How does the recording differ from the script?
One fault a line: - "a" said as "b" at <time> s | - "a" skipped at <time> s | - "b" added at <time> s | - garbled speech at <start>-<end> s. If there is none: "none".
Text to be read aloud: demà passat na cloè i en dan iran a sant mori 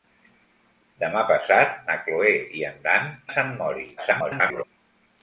- "iran" skipped at 3.1 s
- garbled speech at 4.0-4.6 s